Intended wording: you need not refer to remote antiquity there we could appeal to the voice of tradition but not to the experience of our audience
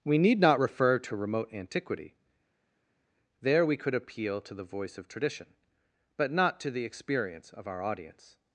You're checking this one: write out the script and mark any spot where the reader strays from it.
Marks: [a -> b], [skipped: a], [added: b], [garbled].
[you -> we] need not refer to remote antiquity there we could appeal to the voice of tradition but not to the experience of our audience